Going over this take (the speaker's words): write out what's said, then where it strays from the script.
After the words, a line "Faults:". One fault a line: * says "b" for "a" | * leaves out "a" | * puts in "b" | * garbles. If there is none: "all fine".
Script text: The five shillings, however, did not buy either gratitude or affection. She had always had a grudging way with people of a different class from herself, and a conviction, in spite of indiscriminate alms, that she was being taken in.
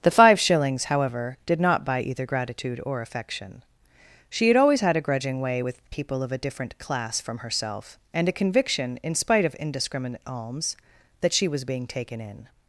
The five shillings, however, did not buy either gratitude or affection. She had always had a grudging way with people of a different class from herself, and a conviction, in spite of indiscriminate alms, that she was being taken in.
Faults:
all fine